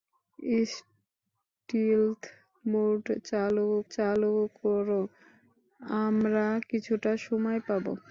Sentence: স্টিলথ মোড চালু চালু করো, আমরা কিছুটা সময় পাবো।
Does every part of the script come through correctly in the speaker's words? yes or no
yes